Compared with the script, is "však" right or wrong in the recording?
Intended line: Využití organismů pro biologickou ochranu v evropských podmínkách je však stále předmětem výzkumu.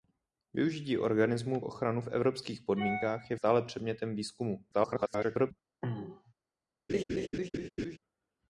wrong